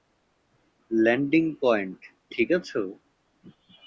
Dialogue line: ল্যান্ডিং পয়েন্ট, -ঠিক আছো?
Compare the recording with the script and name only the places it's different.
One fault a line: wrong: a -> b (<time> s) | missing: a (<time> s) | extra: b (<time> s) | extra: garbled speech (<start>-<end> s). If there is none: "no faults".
no faults